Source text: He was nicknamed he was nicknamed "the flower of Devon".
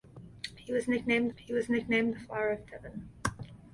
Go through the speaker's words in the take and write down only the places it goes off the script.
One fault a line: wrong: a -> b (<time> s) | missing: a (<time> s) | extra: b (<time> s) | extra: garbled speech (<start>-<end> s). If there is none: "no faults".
no faults